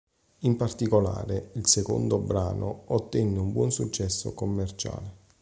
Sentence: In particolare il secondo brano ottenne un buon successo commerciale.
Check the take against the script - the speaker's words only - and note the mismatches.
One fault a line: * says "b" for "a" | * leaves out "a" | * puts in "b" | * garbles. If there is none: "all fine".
all fine